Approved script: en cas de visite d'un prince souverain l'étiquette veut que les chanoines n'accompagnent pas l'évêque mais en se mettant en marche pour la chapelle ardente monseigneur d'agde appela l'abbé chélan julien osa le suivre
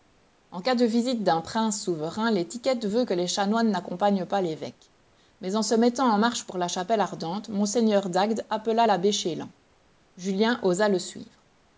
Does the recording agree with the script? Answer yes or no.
yes